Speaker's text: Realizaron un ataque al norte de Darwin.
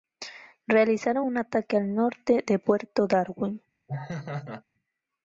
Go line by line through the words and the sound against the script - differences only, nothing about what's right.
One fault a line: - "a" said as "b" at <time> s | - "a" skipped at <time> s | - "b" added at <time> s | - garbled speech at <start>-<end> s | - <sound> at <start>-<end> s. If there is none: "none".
- "puerto" added at 2.5 s
- laugh at 3.9-4.6 s